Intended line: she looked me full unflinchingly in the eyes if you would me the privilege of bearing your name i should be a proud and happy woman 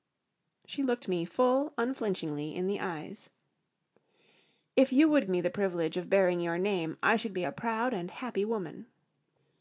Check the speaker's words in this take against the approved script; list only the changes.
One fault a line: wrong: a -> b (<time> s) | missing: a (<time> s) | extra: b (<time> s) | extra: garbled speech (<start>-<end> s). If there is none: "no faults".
no faults